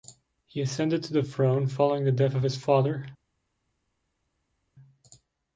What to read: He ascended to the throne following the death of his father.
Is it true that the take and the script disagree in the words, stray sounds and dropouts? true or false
false